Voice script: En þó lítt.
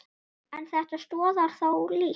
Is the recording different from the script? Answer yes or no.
yes